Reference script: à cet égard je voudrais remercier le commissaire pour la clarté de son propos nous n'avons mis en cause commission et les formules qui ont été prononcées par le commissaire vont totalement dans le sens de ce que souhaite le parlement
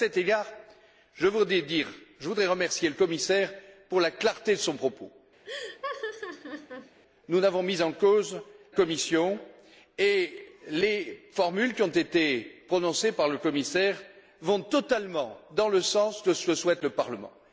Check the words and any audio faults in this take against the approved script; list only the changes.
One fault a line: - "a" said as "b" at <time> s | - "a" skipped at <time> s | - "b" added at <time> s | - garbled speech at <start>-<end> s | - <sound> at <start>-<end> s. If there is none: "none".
- laugh at 5.4-7.0 s